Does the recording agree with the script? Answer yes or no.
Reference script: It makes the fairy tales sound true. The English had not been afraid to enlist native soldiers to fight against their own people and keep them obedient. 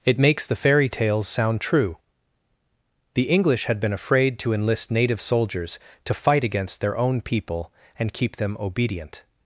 no